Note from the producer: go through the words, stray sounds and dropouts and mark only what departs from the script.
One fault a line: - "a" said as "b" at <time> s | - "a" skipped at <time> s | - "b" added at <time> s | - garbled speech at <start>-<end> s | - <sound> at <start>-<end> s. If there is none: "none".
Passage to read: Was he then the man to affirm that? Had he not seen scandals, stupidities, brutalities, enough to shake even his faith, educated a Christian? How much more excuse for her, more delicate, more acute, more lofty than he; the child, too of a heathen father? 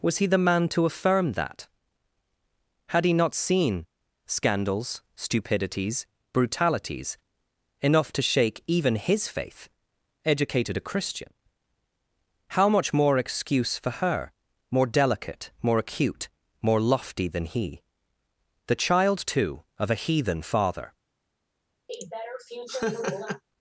- "then" skipped at 0.2 s
- laugh at 21.9-23.4 s